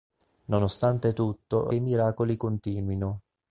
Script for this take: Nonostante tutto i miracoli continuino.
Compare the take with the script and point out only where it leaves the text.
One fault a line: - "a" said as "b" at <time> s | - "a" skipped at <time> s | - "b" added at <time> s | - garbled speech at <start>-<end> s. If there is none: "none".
none